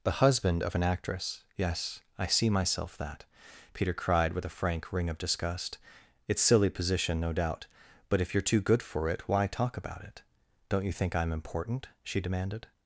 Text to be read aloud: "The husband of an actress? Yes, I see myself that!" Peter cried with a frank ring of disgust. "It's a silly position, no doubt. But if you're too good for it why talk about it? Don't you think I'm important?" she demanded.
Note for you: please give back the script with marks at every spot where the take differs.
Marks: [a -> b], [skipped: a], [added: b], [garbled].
"The husband of an actress? Yes, I see myself that!" Peter cried with a frank ring of disgust. "It's [skipped: a] silly position, no doubt. But if you're too good for it why talk about it? Don't you think I'm important?" she demanded.